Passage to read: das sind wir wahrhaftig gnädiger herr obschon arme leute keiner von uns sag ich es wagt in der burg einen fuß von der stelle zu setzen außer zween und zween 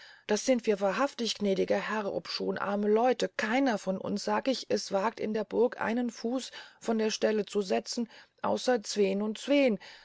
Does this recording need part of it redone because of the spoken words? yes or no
no